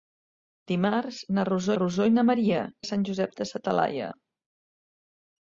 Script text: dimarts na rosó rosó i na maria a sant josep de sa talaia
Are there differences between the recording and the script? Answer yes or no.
no